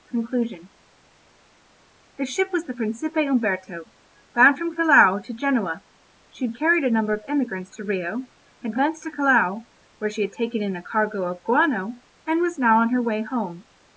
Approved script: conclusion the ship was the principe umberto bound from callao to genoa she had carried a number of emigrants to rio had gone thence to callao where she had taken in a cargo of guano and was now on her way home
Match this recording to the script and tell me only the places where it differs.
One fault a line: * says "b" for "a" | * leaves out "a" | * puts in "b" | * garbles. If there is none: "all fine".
* leaves out "gone"